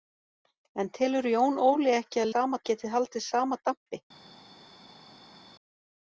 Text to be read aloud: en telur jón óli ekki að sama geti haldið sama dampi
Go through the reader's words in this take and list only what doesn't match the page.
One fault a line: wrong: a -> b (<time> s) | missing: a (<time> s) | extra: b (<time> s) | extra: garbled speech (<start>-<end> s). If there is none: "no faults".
no faults